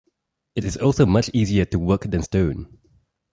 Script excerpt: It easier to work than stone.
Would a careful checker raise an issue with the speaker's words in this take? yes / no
yes